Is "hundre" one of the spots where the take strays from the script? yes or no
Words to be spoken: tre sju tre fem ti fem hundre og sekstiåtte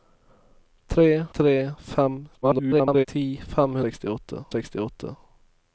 yes